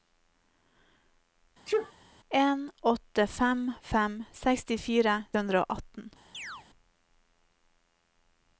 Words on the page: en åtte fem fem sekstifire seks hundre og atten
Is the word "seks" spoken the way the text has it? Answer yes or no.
no